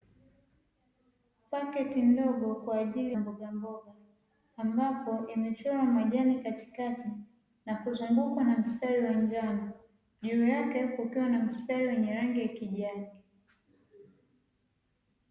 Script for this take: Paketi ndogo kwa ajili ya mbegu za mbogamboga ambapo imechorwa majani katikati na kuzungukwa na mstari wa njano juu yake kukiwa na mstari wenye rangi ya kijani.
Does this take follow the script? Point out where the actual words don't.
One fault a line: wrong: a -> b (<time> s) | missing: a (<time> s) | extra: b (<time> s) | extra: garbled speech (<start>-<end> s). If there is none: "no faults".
missing: ya mbegu za (3.1 s)